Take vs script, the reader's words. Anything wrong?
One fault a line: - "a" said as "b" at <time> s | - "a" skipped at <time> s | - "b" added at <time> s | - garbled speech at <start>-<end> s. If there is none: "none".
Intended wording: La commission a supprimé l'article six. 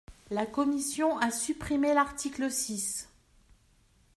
none